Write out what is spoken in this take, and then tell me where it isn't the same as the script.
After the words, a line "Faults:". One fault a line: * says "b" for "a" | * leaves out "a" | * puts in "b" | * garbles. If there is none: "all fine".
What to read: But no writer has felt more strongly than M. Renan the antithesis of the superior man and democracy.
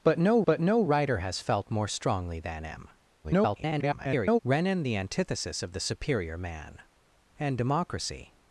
But no but no writer has felt more strongly than M. [garbled] Renan the antithesis of the superior man and democracy.
Faults:
* puts in "but no"
* garbles